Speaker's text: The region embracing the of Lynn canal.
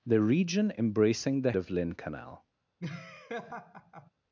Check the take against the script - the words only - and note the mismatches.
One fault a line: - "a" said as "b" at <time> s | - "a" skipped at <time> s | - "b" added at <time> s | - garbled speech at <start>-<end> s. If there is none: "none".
none